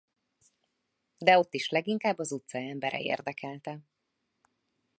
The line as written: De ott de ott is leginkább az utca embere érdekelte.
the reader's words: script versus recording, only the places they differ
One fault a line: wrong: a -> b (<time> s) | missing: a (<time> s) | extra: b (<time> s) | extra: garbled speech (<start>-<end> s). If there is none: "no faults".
missing: de ott (1.5 s)